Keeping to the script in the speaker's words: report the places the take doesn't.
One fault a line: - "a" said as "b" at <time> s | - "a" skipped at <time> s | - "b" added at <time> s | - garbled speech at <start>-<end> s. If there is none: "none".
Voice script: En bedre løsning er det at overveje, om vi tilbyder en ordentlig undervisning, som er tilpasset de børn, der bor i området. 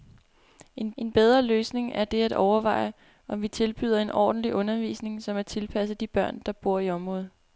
- "en" added at 1.0 s